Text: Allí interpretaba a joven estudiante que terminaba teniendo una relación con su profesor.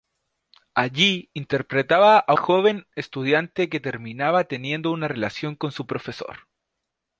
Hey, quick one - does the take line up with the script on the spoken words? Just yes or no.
yes